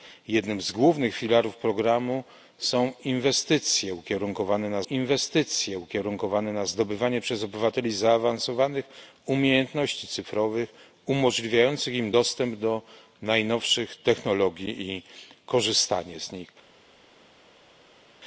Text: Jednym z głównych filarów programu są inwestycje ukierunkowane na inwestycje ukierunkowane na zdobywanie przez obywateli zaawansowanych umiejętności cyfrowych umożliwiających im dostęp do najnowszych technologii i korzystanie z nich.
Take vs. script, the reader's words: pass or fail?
pass